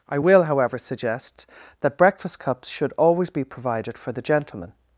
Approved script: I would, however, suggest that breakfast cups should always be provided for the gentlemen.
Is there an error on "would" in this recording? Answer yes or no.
yes